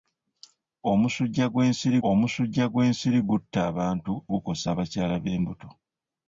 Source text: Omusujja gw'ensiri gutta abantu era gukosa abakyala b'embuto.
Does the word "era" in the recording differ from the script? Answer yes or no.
yes